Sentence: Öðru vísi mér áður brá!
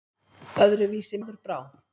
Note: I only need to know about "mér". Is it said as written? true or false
false